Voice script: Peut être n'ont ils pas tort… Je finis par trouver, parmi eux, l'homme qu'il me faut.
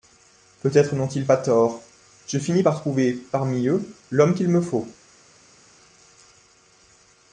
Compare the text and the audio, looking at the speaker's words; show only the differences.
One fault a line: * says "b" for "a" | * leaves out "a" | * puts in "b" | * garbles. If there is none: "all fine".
all fine